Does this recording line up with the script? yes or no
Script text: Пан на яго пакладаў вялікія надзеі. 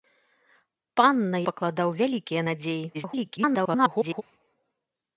no